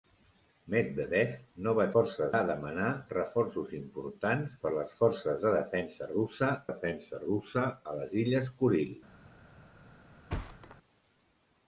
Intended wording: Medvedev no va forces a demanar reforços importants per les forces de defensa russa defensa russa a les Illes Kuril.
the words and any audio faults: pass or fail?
fail